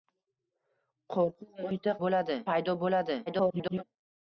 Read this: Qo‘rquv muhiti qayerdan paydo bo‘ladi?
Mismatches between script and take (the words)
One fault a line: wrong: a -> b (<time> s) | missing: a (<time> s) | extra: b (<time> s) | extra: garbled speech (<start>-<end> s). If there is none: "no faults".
wrong: qayerdan -> bo‘ladi (2.0 s)
extra: garbled speech (3.3-3.8 s)